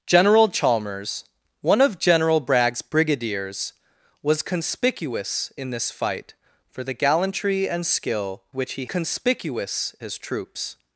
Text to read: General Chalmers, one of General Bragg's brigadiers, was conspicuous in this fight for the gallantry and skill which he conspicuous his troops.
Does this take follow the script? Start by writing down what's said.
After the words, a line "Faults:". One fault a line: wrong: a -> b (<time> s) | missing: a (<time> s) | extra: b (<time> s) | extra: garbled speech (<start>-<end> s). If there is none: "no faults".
General Chalmers, one of General Bragg's brigadiers, was conspicuous in this fight for the gallantry and skill which he conspicuous his troops.
Faults:
no faults